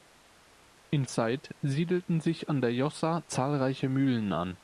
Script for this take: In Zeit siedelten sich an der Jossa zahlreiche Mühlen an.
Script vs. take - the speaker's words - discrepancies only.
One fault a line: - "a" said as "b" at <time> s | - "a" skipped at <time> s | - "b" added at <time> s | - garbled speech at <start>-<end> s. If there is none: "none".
none